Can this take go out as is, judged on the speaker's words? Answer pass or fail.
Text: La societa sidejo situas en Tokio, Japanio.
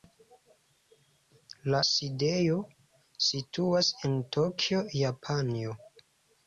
fail